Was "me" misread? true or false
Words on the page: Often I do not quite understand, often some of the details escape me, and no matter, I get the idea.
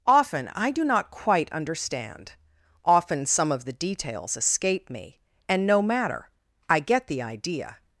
false